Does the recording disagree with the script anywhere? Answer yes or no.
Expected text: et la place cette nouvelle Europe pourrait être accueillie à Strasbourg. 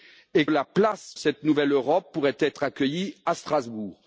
no